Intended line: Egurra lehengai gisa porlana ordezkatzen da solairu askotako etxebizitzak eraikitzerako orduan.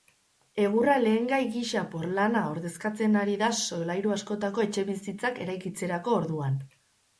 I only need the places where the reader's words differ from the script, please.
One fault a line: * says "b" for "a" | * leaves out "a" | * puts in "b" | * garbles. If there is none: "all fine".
* puts in "ari"